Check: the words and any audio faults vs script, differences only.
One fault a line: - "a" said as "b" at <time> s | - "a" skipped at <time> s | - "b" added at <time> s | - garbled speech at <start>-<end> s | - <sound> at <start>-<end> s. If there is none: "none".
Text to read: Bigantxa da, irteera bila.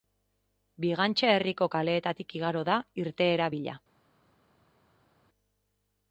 - "herriko kaleetatik igaro" added at 1.3 s